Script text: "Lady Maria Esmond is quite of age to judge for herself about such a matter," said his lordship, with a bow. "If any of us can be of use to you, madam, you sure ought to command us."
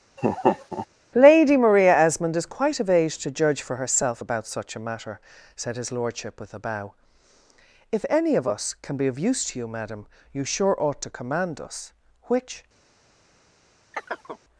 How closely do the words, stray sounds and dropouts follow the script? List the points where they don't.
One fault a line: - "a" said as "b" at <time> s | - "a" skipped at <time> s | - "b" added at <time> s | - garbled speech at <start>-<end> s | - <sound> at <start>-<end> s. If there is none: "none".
- laugh at 0.2-0.9 s
- "Which" added at 12.3 s
- chirp at 13.9-14.4 s